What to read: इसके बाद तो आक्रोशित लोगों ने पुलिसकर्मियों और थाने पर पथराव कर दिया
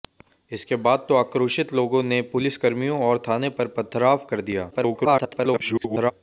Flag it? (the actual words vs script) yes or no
yes